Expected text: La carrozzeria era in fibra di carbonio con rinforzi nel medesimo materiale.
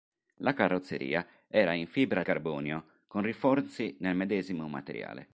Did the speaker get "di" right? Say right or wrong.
wrong